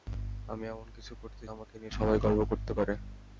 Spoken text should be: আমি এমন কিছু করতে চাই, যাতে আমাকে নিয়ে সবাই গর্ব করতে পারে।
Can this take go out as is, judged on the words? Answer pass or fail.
fail